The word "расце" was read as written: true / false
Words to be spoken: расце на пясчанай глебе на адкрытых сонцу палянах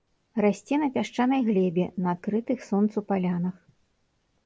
true